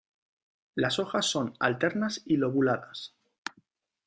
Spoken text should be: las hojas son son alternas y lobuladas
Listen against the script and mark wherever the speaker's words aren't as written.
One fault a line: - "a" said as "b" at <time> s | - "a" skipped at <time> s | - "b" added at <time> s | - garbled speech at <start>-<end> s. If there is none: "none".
- "son" skipped at 1.5 s